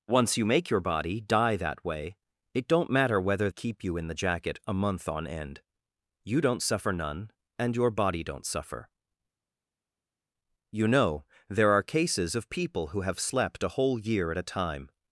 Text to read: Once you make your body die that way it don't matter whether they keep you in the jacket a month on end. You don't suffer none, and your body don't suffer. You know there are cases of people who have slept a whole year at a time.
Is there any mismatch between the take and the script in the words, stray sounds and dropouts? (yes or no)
yes